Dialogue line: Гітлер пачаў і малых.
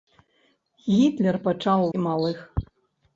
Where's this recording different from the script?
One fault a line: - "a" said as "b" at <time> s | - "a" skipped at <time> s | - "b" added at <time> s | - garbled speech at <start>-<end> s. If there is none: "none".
none